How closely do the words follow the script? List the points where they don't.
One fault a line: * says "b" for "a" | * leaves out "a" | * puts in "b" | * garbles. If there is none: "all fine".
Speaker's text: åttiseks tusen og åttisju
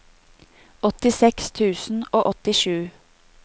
all fine